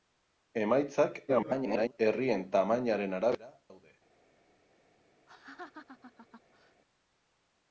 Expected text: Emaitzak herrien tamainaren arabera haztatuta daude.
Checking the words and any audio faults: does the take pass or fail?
fail